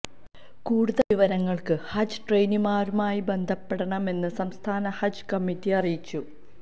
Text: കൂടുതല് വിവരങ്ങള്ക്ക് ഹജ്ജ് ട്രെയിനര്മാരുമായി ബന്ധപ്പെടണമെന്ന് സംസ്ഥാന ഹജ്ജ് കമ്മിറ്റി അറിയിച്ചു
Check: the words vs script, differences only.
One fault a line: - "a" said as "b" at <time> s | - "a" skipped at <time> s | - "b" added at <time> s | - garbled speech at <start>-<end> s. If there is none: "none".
none